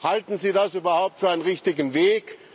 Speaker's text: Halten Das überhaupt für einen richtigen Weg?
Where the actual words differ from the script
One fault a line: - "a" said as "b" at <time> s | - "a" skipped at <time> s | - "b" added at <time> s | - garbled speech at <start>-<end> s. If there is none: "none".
- "Sie" added at 0.4 s